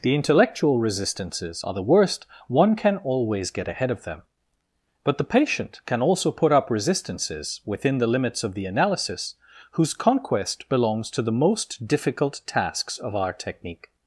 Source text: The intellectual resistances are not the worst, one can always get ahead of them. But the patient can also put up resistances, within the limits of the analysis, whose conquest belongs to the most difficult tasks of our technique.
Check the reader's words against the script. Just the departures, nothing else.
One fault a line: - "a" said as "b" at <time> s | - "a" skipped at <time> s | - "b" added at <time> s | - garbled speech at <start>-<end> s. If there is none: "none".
- "not" skipped at 1.7 s